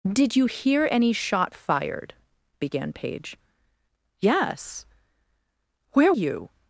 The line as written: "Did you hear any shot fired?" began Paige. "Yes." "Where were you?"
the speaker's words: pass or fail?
fail